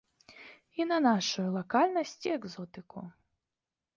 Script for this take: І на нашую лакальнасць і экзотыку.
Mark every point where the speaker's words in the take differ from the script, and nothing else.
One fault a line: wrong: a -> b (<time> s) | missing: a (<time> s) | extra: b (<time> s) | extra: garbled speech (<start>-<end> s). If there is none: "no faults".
no faults